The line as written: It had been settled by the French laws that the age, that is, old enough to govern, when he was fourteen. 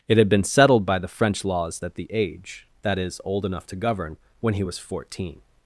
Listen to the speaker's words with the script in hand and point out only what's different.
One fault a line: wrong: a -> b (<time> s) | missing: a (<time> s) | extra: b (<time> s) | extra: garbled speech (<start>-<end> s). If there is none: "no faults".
no faults